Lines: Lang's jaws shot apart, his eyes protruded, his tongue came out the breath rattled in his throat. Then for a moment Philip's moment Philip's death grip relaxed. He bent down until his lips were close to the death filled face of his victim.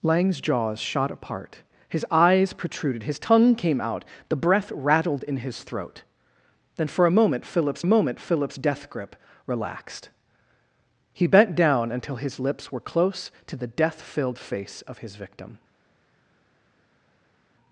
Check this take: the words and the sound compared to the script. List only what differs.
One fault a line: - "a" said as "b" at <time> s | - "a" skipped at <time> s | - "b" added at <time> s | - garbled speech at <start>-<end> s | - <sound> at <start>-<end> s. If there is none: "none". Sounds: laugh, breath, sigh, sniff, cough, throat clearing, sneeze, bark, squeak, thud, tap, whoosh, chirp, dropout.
none